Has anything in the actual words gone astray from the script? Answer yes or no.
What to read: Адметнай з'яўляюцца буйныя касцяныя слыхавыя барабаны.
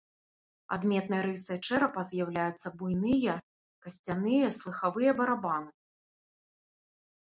yes